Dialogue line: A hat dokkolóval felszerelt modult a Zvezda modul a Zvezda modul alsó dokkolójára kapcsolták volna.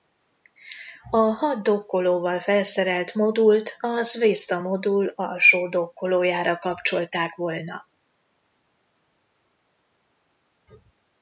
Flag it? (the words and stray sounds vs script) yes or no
yes